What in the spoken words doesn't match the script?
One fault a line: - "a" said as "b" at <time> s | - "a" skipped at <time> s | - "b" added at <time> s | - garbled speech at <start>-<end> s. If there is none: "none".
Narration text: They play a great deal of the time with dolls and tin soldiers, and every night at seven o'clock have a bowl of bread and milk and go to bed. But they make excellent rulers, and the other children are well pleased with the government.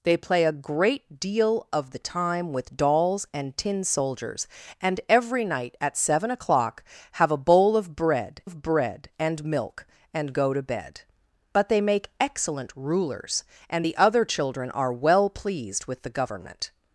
- "of bread" added at 8.4 s